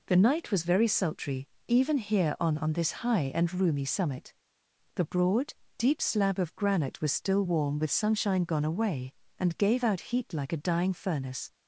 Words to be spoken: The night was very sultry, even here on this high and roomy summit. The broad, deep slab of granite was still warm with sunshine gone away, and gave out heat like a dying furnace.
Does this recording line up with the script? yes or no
no